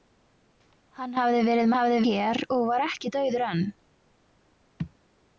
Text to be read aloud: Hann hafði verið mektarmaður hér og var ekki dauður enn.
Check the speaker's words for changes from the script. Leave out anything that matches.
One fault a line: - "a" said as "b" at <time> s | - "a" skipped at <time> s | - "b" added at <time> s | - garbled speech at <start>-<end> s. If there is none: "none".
- "mektarmaður" said as "hafði" at 1.7 s